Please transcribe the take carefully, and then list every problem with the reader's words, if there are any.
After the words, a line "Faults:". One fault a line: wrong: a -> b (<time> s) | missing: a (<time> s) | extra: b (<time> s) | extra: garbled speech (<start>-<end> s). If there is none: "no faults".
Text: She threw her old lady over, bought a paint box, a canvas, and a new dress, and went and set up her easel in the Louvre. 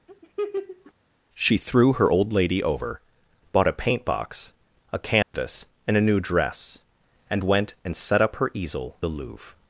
She threw her old lady over, bought a paint box, a canvas, and a new dress, and went and set up her easel the Louvre.
Faults:
missing: in (9.0 s)